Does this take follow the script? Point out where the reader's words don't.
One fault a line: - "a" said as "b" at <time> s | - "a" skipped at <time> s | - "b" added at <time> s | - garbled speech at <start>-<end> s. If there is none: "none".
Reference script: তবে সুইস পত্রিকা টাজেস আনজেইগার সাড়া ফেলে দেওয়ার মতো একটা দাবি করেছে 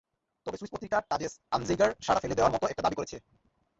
none